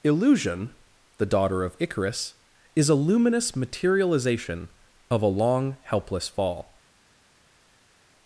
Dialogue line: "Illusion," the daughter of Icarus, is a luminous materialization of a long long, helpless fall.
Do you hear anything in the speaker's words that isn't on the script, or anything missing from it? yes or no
yes